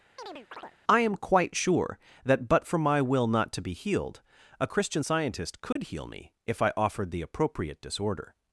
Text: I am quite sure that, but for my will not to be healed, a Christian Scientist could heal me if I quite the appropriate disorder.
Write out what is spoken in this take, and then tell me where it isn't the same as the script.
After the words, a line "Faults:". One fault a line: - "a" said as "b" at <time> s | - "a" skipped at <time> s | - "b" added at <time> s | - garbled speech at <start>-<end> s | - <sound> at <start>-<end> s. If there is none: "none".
I am quite sure that, but for my will not to be healed, a Christian Scientist could heal me if I offered the appropriate disorder.
Faults:
- chirp at 0.2-0.8 s
- dropout at 5.7-5.8 s
- "quite" said as "offered" at 6.8 s